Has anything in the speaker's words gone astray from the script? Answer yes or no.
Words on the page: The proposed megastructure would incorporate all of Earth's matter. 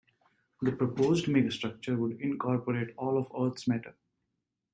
no